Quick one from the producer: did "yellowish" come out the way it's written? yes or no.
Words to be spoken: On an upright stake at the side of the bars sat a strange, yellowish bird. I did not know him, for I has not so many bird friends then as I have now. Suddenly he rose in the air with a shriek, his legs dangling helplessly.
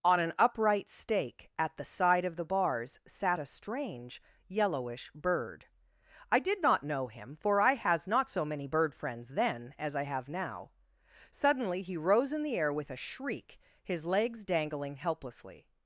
yes